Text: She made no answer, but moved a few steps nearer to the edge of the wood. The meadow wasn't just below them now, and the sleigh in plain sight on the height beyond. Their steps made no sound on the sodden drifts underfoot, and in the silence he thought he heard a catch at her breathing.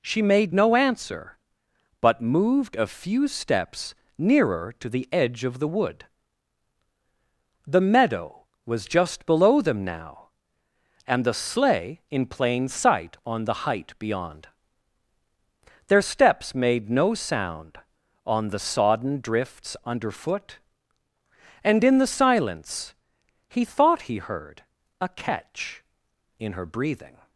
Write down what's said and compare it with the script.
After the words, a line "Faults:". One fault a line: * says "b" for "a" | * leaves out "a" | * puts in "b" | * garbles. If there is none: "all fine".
She made no answer, but moved a few steps nearer to the edge of the wood. The meadow was just below them now, and the sleigh in plain sight on the height beyond. Their steps made no sound on the sodden drifts underfoot, and in the silence he thought he heard a catch in her breathing.
Faults:
* says "was" for "wasn't"
* says "in" for "at"